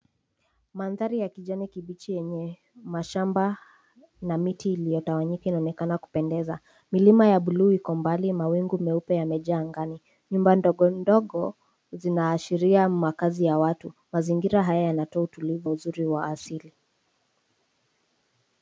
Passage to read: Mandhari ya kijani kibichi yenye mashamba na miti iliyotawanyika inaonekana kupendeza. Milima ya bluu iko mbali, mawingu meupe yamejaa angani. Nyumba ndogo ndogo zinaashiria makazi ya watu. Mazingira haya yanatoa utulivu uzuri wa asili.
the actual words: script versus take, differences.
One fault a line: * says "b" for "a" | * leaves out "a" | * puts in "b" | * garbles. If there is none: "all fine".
all fine